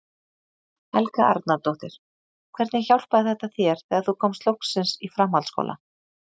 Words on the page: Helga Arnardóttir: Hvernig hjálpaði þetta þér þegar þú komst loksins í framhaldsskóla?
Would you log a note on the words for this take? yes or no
no